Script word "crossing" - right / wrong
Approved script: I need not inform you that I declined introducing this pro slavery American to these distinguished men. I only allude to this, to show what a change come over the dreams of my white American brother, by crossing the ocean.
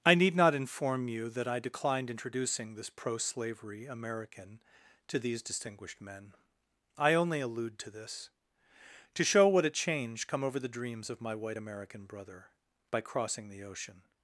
right